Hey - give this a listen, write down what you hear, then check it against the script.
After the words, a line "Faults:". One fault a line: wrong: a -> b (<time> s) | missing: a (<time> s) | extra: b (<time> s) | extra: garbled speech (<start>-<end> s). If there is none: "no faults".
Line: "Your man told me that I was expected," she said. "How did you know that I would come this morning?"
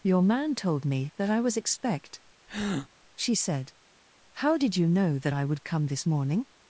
"Your man told me that I was expect," she said. "How did you know that I would come this morning?"
Faults:
wrong: expected -> expect (1.6 s)